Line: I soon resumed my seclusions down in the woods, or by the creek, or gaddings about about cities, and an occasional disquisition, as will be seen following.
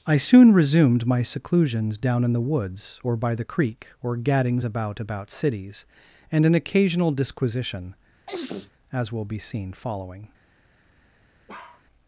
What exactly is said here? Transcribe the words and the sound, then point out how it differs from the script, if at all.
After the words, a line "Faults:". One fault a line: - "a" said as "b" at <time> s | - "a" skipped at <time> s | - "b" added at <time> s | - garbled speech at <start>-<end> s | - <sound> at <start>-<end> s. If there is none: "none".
I soon resumed my seclusions down in the woods, or by the creek, or gaddings about about cities, and an occasional disquisition, as will be seen following.
Faults:
- sneeze at 8.3-8.7 s
- bark at 11.5-11.8 s